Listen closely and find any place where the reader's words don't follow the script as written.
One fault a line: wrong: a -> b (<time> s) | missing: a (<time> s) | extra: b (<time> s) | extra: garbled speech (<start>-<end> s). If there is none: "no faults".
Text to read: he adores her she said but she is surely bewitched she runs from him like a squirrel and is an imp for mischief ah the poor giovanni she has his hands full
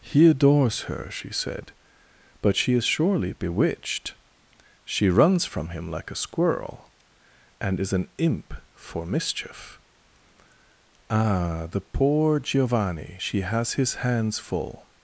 no faults